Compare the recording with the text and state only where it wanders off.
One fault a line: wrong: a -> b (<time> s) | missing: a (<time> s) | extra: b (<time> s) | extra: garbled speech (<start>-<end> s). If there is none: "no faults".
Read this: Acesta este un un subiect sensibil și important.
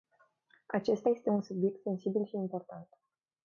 missing: un (1.4 s)